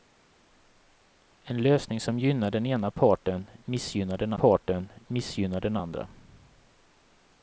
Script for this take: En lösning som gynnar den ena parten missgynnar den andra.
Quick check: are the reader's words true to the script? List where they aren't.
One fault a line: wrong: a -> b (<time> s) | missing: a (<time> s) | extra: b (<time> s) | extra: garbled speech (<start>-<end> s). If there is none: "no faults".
extra: parten missgynnar den (4.3 s)